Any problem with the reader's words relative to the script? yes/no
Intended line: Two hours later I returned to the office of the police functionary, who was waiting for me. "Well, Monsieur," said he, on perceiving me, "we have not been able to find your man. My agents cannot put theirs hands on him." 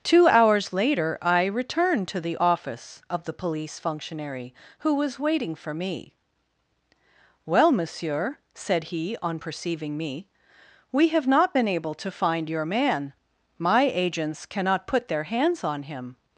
yes